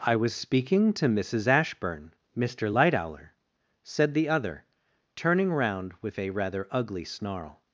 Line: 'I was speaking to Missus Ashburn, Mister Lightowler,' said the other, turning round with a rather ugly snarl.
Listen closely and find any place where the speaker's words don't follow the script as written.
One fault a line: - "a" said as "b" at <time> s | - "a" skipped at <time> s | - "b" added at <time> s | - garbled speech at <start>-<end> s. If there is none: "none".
none